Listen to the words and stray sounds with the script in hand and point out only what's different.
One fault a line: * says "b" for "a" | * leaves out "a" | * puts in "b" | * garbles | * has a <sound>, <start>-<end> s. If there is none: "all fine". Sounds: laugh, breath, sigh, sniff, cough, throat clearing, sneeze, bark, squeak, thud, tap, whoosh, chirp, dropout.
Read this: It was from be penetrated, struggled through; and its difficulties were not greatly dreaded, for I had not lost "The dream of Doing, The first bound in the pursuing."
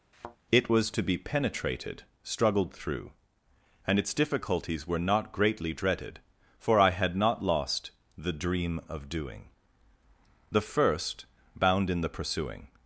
* has a thud, 0.1-0.4 s
* says "to" for "from"